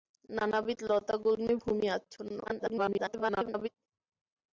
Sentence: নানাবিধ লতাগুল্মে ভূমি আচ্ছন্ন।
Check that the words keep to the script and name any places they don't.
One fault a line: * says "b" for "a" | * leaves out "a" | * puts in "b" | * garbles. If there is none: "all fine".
* garbles